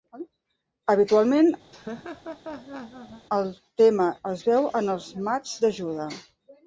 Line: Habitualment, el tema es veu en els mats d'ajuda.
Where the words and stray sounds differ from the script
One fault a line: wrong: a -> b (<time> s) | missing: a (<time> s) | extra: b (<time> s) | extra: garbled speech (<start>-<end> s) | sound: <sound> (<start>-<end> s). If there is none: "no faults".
sound: laugh (1.7-3.3 s)